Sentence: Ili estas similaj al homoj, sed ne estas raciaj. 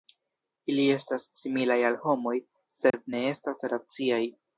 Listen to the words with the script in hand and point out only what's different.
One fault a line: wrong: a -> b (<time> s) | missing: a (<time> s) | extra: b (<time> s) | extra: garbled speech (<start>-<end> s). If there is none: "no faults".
no faults